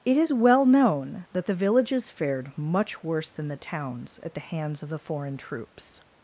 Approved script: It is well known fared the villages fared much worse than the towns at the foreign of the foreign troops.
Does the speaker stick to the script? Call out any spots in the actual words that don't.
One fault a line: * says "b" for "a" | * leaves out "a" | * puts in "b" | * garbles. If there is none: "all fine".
* says "that" for "fared"
* says "hands" for "foreign"